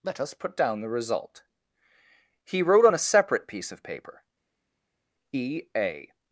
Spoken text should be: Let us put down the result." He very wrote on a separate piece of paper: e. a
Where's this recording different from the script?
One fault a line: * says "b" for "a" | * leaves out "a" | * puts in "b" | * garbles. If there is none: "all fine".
* leaves out "very"